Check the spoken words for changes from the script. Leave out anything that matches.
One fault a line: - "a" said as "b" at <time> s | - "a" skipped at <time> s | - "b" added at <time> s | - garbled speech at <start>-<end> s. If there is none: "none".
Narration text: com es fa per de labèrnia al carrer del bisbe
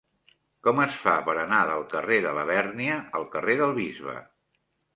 - "anar del carrer" added at 1.4 s